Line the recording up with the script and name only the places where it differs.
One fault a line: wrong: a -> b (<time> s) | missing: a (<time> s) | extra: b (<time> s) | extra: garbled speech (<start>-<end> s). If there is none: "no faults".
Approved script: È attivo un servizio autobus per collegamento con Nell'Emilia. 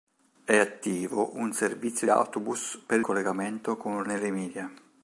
no faults